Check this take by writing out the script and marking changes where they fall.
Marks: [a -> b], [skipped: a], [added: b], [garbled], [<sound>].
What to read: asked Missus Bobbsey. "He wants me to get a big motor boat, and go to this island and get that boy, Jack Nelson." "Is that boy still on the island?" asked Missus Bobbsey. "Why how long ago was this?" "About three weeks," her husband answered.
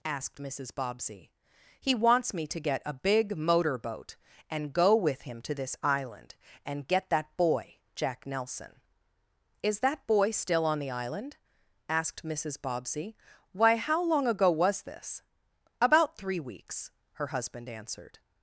asked Missus Bobbsey. "He wants me to get a big motor boat, and go [added: with him] to this island and get that boy, Jack Nelson." "Is that boy still on the island?" asked Missus Bobbsey. "Why how long ago was this?" "About three weeks," her husband answered.